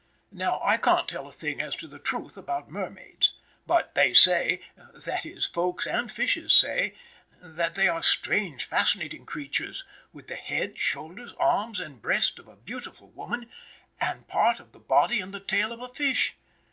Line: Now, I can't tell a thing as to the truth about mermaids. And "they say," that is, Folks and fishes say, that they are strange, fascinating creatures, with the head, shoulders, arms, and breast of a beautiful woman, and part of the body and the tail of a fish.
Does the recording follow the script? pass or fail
fail